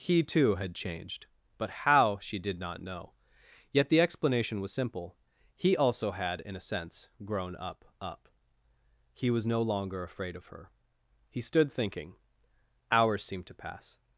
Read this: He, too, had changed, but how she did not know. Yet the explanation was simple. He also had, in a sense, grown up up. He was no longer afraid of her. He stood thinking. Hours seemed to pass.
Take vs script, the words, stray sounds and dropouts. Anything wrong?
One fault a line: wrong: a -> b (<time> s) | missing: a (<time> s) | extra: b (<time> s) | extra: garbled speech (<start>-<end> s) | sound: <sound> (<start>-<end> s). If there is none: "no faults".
no faults